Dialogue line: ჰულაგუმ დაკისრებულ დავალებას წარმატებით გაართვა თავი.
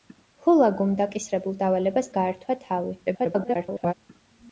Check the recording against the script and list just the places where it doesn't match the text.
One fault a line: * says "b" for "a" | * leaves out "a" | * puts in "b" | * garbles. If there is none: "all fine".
* leaves out "წარმატებით"
* garbles